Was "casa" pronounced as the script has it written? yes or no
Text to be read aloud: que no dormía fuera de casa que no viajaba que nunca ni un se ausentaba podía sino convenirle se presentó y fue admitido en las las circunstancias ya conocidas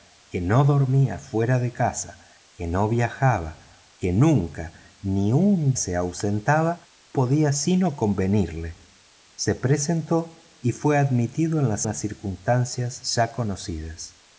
yes